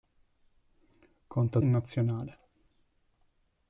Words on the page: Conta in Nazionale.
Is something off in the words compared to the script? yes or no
no